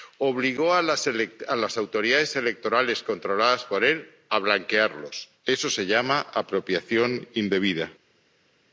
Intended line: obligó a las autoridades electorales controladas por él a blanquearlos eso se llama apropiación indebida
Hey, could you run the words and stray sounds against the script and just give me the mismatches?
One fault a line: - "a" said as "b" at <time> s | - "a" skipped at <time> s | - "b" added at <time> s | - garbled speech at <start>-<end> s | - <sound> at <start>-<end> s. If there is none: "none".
none